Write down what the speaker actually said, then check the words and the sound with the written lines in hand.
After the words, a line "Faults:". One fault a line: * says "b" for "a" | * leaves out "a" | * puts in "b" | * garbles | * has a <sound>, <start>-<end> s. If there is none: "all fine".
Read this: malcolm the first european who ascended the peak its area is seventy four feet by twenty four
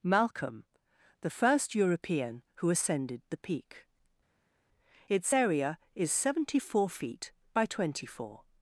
malcolm the first european who ascended the peak its area is seventy four feet by twenty four
Faults:
all fine